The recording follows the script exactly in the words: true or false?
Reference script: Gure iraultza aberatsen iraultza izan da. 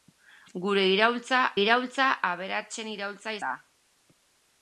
false